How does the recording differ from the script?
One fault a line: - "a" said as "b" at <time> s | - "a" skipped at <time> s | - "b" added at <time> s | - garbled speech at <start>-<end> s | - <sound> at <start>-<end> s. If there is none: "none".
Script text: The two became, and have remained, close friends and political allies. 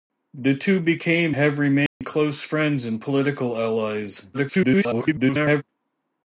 - "and" skipped at 1.4 s
- dropout at 1.9-2.0 s
- garbled speech at 4.3-5.6 s